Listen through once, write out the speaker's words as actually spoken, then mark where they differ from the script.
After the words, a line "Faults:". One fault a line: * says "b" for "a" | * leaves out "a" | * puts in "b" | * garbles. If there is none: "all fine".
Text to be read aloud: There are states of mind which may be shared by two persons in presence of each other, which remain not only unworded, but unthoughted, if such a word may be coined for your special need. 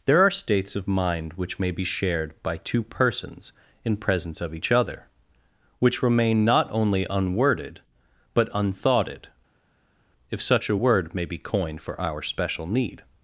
There are states of mind which may be shared by two persons in presence of each other, which remain not only unworded, but unthoughted, if such a word may be coined for our special need.
Faults:
* says "our" for "your"